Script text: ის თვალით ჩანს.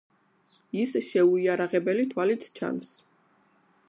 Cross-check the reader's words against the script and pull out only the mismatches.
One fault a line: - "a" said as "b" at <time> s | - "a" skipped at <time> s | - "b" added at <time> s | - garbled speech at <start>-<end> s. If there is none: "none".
- "შეუიარაღებელი" added at 1.1 s